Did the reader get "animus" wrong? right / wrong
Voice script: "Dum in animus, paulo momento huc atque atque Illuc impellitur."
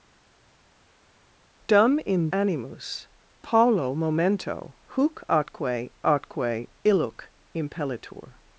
right